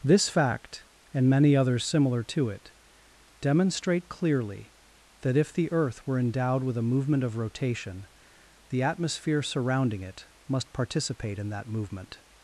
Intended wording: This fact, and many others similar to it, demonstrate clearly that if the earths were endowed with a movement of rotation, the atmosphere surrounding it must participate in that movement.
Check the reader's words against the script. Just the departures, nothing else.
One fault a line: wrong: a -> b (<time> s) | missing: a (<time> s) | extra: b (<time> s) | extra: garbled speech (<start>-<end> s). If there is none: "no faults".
wrong: earths -> earth (5.7 s)